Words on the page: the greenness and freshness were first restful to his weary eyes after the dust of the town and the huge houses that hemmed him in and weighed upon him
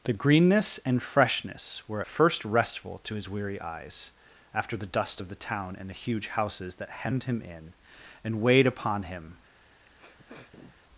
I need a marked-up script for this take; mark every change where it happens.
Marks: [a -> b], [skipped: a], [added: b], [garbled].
the greenness and freshness were first restful to his weary eyes after the dust of the town and the huge houses that hemmed him in and weighed upon him